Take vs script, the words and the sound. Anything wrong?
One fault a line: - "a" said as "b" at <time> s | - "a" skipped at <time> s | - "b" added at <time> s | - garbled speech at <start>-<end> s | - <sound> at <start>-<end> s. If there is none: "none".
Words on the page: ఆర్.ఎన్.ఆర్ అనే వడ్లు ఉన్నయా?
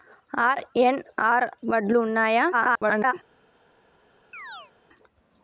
- "అనే" skipped at 1.4 s
- garbled speech at 2.5-3.1 s
- chirp at 4.3-4.7 s